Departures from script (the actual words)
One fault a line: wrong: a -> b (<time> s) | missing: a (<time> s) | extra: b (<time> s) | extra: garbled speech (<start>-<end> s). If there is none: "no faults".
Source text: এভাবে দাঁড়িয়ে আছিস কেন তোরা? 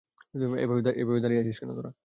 no faults